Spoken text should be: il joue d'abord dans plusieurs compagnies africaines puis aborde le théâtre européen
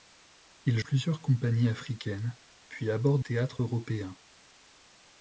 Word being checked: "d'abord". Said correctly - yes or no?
no